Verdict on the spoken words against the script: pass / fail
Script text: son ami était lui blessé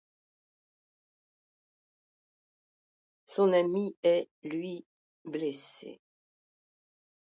fail